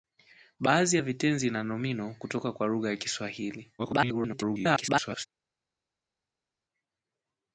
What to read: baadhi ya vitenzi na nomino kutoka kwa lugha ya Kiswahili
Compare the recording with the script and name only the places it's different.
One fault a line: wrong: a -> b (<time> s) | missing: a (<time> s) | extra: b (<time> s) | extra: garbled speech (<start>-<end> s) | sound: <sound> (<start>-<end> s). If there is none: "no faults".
extra: garbled speech (3.8-5.3 s)